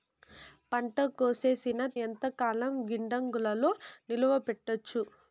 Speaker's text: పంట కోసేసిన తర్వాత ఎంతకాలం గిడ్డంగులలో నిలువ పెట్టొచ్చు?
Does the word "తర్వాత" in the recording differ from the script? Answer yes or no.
yes